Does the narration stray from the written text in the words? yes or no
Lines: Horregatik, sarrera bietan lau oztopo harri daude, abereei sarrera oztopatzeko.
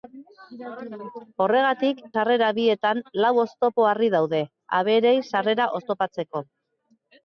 no